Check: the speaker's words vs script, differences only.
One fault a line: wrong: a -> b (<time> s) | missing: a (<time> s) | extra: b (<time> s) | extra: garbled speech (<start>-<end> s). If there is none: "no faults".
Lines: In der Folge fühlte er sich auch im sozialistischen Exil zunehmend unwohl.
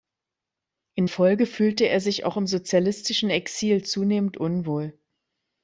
missing: der (1.1 s)